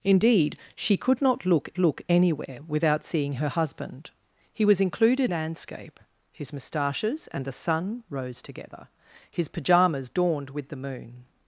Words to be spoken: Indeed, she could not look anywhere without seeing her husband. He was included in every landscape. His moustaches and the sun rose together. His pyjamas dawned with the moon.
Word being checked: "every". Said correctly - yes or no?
no